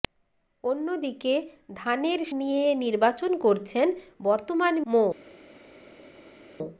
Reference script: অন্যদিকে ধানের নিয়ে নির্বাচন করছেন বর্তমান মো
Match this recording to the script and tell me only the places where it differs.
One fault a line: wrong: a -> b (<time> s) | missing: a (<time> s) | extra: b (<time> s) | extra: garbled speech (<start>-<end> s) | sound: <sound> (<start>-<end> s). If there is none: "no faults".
no faults